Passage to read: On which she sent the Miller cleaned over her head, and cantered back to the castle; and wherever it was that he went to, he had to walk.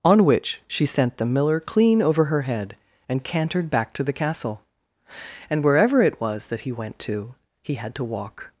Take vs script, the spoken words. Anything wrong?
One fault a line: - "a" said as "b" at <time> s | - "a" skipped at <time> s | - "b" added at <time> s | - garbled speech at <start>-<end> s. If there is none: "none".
- "cleaned" said as "clean" at 1.6 s